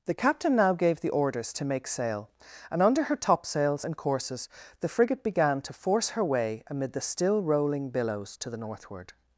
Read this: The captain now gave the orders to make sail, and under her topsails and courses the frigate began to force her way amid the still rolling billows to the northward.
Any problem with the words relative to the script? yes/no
no